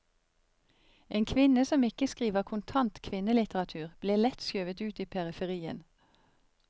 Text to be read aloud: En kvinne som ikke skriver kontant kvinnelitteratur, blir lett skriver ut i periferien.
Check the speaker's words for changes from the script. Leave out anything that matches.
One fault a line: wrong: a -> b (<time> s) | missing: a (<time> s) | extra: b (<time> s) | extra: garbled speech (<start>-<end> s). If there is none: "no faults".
wrong: skriver -> skjøvet (4.5 s)